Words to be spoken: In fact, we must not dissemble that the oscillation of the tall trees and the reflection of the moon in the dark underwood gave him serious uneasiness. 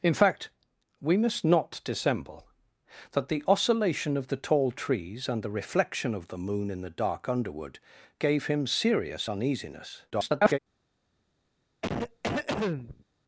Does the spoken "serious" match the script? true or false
true